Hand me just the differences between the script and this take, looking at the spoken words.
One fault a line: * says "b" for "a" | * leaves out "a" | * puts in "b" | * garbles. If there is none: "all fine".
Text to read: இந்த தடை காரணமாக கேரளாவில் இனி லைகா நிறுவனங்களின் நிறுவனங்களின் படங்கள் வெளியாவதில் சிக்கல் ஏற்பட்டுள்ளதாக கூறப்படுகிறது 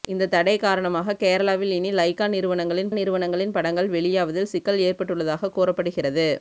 all fine